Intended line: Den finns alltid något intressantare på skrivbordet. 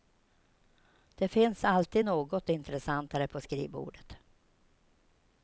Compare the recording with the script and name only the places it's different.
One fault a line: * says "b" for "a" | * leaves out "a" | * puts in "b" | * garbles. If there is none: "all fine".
* says "Det" for "Den"